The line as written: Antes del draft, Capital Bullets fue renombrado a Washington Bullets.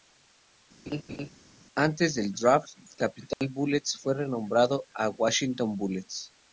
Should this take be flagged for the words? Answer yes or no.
no